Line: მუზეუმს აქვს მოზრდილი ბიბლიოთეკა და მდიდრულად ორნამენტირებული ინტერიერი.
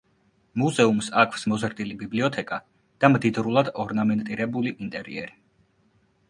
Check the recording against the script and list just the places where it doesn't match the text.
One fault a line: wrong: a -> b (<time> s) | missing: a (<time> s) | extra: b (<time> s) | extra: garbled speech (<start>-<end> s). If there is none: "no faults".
no faults